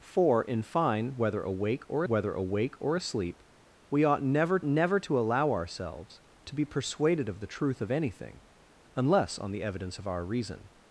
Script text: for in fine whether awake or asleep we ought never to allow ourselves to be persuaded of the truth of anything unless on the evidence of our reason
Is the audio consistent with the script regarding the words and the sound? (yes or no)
no